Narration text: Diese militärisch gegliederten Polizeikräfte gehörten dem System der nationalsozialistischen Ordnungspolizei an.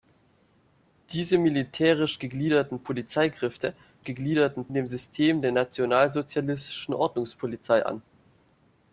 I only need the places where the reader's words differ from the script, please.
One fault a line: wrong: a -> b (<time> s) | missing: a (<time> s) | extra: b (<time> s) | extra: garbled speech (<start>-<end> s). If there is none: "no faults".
wrong: gehörten -> gegliederten (4.0 s)